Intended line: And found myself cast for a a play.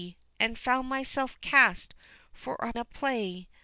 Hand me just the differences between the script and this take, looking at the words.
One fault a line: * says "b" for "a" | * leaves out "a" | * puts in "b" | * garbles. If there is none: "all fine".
all fine